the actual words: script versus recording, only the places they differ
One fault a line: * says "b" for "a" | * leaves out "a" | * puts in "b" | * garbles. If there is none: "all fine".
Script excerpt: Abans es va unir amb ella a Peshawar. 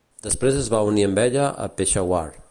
* says "Després" for "Abans"